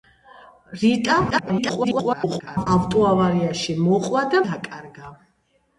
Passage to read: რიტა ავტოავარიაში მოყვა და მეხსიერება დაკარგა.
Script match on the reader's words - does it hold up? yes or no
no